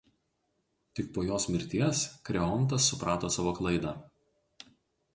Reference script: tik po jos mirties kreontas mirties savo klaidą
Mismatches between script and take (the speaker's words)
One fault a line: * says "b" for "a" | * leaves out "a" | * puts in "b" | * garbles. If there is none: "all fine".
* says "suprato" for "mirties"